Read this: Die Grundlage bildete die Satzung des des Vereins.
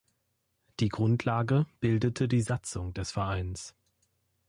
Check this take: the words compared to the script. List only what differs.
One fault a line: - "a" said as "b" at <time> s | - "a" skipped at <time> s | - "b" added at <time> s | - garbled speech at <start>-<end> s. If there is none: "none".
- "des" skipped at 3.1 s